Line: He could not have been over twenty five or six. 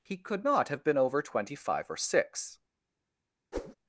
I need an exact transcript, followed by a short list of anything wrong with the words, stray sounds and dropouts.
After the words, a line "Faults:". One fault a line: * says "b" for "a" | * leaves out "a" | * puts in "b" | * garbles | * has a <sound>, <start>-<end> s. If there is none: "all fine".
He could not have been over twenty five or six.
Faults:
* has a whoosh, 3.5-3.7 s